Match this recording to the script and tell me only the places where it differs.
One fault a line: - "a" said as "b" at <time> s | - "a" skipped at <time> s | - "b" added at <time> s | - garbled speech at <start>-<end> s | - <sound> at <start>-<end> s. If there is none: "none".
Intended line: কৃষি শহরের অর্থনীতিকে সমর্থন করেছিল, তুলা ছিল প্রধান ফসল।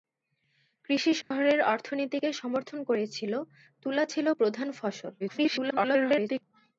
- dropout at 1.2-1.3 s
- garbled speech at 5.2-6.4 s